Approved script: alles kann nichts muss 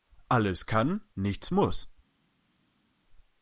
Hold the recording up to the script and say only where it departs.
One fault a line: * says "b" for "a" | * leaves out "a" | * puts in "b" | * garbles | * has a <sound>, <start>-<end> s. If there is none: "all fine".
all fine